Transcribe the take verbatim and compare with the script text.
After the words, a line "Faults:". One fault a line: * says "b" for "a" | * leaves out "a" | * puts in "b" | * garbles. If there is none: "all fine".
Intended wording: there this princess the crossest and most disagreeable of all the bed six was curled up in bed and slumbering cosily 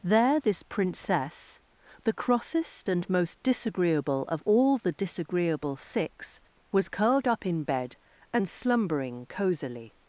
there this princess the crossest and most disagreeable of all the disagreeable six was curled up in bed and slumbering cosily
Faults:
* says "disagreeable" for "bed"